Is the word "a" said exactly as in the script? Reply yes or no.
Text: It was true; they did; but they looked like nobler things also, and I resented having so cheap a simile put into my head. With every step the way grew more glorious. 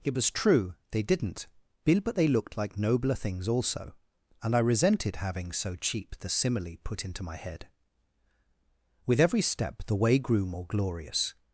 no